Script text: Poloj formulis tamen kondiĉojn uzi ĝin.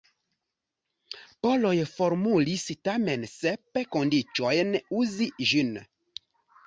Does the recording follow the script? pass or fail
fail